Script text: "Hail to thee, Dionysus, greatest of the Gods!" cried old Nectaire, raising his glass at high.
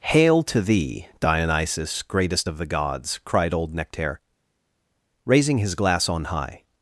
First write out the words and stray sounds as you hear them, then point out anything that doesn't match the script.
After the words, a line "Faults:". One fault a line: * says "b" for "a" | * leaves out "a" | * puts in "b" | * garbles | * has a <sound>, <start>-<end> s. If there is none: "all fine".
"Hail to thee, Dionysus, greatest of the Gods!" cried old Nectaire, raising his glass on high.
Faults:
* says "on" for "at"